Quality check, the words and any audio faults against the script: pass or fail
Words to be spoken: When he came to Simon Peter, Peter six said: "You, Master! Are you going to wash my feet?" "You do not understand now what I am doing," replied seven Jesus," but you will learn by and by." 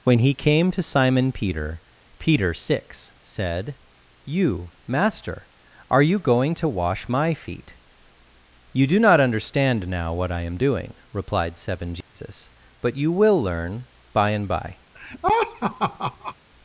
fail